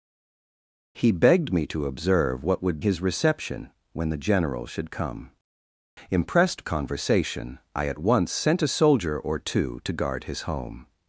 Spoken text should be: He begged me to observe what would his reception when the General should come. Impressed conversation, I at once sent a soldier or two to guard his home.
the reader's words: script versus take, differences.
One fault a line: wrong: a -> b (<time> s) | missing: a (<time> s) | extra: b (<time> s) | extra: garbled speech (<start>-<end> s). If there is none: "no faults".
no faults